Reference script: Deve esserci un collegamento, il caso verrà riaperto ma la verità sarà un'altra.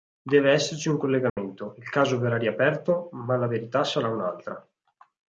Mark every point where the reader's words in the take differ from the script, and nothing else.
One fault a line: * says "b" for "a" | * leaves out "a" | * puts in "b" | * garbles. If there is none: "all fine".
all fine